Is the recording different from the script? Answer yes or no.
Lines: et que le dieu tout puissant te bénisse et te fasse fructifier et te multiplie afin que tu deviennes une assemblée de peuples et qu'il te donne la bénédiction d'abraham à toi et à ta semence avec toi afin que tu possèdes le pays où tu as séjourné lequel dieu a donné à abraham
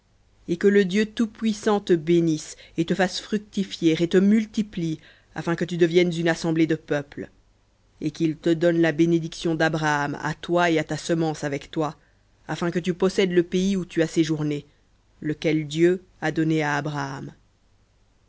no